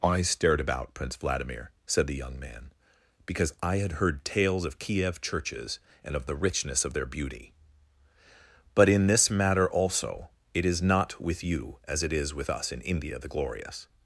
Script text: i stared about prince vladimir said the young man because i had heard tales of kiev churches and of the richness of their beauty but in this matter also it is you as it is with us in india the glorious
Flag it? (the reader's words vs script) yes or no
yes